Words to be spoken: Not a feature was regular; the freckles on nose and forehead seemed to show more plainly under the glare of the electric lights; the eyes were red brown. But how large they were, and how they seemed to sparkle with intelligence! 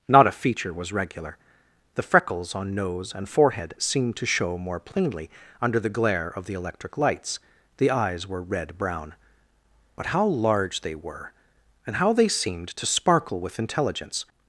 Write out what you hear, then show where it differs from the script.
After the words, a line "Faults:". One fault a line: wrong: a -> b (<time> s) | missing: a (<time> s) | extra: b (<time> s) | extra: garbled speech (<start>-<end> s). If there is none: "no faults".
Not a feature was regular; the freckles on nose and forehead seemed to show more plainly under the glare of the electric lights; the eyes were red brown. But how large they were, and how they seemed to sparkle with intelligence!
Faults:
no faults